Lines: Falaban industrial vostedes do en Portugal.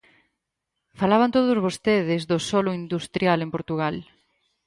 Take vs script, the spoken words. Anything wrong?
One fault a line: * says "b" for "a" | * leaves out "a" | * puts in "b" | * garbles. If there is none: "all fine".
* says "todos" for "industrial"
* puts in "solo industrial"